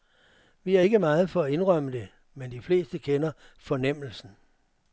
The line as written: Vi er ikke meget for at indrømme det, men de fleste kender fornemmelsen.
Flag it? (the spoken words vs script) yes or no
no